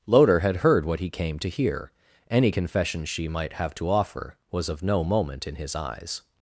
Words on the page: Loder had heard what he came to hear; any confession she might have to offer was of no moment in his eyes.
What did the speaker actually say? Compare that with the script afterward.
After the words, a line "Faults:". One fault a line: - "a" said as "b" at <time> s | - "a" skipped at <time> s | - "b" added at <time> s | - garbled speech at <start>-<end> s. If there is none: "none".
Loder had heard what he came to hear; any confession she might have to offer was of no moment in his eyes.
Faults:
none